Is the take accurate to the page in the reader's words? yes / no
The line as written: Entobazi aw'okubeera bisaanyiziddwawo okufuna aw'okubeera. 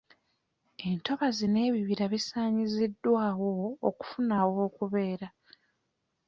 no